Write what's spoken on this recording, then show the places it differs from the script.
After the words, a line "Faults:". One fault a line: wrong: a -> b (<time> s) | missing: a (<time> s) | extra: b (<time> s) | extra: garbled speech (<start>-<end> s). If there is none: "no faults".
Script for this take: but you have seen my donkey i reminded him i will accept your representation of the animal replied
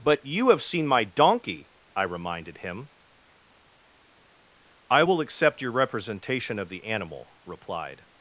but you have seen my donkey i reminded him i will accept your representation of the animal replied
Faults:
no faults